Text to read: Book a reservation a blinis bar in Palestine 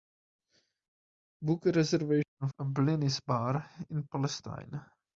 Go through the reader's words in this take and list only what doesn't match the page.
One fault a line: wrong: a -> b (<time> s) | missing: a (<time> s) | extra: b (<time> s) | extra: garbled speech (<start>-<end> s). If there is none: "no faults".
no faults